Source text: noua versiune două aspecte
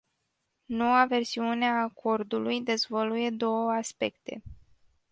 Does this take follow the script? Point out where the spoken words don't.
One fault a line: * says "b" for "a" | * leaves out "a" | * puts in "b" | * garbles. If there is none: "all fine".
* puts in "a acordului dezvăluie"